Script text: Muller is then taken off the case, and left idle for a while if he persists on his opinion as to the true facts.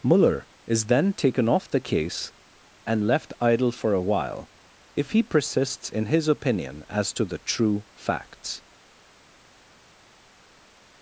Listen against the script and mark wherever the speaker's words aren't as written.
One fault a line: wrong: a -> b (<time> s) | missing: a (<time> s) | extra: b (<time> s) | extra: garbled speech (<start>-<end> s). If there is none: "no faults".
wrong: on -> in (5.9 s)